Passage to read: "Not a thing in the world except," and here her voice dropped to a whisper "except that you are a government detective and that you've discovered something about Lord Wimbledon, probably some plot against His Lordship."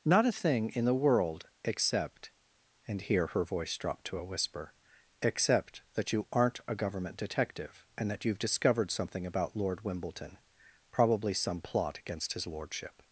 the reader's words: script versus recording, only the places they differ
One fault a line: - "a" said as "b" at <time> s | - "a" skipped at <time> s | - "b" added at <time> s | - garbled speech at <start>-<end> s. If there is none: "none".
- "are" said as "aren't" at 6.3 s